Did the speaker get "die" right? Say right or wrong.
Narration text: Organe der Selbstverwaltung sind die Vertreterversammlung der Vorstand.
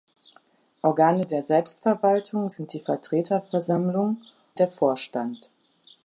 right